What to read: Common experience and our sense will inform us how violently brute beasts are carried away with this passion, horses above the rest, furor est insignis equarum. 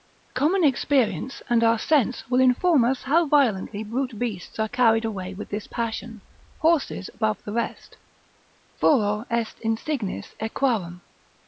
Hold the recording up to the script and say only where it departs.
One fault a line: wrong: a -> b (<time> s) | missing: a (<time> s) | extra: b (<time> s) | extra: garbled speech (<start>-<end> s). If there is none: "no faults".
no faults